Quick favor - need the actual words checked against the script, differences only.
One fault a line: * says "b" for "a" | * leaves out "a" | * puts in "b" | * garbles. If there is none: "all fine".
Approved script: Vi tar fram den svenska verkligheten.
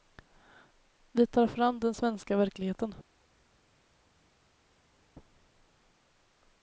all fine